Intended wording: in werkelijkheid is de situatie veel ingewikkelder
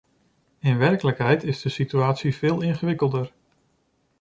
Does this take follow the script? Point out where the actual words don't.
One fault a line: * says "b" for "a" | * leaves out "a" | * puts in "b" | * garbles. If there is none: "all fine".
all fine